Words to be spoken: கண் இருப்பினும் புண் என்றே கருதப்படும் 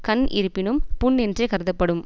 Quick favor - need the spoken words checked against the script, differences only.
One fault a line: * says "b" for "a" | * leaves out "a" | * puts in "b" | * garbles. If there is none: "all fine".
all fine